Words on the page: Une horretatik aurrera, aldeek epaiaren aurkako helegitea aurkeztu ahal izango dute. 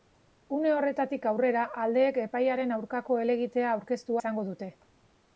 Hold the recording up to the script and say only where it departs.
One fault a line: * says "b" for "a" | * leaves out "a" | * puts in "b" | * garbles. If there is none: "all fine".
* leaves out "ahal"